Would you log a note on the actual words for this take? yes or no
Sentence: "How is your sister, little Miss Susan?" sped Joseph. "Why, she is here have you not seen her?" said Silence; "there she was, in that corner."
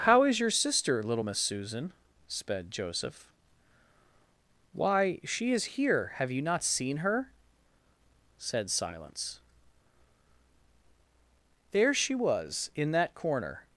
no